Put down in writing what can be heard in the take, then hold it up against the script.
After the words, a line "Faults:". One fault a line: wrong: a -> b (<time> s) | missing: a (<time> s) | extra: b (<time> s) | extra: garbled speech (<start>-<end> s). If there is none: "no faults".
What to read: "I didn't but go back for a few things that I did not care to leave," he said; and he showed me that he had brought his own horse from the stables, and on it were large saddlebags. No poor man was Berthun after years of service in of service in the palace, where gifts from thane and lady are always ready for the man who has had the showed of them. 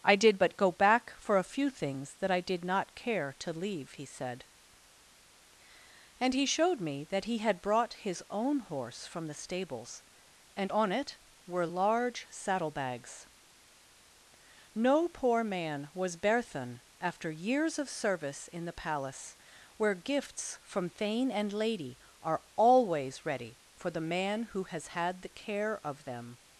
"I did but go back for a few things that I did not care to leave," he said; and he showed me that he had brought his own horse from the stables, and on it were large saddlebags. No poor man was Berthun after years of service in the palace, where gifts from thane and lady are always ready for the man who has had the care of them.
Faults:
wrong: didn't -> did (0.1 s)
missing: of service in (18.7 s)
wrong: showed -> care (25.3 s)